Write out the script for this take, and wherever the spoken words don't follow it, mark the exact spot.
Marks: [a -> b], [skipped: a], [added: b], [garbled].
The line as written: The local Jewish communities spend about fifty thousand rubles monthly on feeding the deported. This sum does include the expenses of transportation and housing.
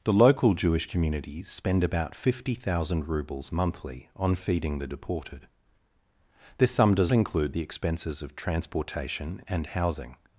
The local Jewish communities spend about fifty thousand rubles monthly on feeding the deported. This sum does include the expenses of transportation and housing.